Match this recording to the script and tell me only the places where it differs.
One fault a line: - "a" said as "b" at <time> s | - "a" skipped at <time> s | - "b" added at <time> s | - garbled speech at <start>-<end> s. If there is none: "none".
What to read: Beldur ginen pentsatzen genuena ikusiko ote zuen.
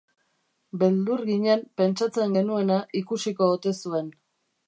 none